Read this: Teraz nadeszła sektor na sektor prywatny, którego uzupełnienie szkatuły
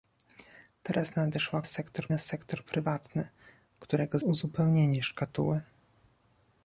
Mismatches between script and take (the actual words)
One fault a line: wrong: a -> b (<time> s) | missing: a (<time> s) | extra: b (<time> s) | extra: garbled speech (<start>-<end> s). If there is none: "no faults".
no faults